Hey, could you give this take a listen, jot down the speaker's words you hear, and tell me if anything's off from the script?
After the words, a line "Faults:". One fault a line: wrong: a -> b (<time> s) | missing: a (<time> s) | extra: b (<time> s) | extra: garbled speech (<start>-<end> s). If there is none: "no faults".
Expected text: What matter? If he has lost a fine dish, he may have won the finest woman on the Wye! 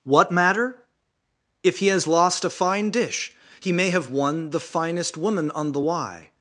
What matter? If he has lost a fine dish, he may have won the finest woman on the Wye!
Faults:
no faults